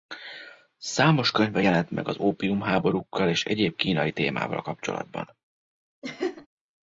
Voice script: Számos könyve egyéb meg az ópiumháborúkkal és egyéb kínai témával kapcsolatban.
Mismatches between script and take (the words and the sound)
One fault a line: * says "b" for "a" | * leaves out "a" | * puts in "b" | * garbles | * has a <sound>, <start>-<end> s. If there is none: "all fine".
* says "jelent" for "egyéb"
* has a laugh, 6.0-6.5 s